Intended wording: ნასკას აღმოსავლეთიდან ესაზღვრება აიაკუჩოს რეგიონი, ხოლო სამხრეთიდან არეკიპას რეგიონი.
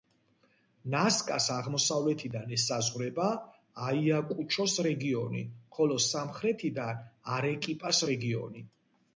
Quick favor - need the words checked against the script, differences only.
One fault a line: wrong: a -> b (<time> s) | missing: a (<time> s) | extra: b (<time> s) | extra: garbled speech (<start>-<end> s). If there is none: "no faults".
no faults